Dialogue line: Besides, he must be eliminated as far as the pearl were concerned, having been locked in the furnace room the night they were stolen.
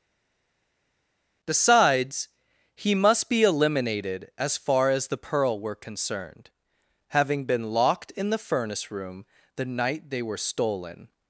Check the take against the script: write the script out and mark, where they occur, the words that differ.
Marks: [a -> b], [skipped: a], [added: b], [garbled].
Besides, he must be eliminated as far as the pearl were concerned, having been locked in the furnace room the night they were stolen.